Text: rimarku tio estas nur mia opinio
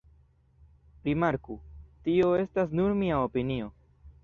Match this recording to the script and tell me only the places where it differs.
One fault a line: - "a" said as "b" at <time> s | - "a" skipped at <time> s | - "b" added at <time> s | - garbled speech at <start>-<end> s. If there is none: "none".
none